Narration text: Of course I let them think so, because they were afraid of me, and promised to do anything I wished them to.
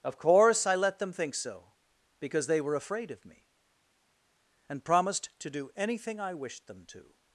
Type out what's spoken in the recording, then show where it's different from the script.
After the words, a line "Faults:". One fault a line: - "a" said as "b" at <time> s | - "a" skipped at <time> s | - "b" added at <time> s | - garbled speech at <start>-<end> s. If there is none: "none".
Of course I let them think so, because they were afraid of me, and promised to do anything I wished them to.
Faults:
none